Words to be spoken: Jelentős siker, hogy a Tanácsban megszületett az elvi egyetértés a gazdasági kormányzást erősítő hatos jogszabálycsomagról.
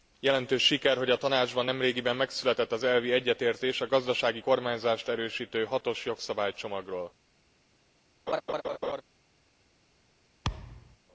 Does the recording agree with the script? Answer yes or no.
no